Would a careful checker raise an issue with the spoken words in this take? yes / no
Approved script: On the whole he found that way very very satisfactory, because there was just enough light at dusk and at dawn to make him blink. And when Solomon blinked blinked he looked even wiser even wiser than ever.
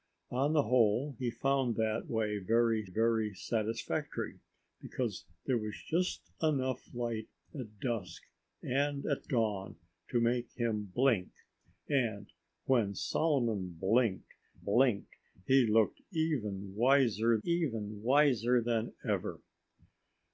no